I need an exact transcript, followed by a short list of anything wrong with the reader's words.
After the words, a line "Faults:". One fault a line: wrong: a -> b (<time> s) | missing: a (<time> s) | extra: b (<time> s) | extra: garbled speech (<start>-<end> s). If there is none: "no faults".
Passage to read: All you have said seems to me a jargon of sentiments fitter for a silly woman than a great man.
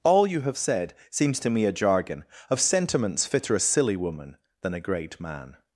All you have said seems to me a jargon of sentiments fitter a silly woman than a great man.
Faults:
missing: for (3.5 s)